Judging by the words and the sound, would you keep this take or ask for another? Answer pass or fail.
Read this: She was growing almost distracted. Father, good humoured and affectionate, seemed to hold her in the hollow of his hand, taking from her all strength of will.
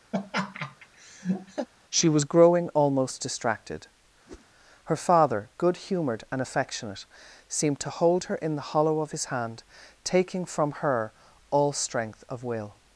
fail